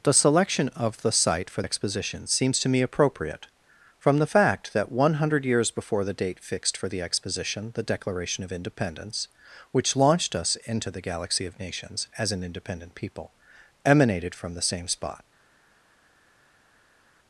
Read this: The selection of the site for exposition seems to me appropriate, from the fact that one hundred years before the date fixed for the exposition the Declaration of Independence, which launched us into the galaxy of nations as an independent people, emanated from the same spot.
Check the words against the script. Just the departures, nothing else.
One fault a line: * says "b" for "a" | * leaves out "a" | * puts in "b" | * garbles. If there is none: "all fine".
all fine